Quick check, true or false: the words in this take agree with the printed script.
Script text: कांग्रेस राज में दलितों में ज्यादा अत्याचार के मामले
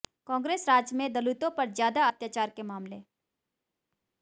false